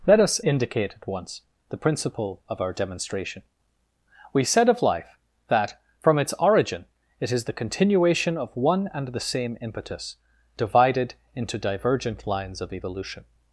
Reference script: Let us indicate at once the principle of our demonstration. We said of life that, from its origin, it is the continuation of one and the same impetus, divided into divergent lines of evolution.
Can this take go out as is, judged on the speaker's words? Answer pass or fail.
pass